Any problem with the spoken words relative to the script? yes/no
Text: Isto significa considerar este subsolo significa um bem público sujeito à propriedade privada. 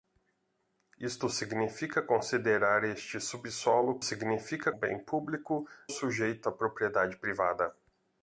no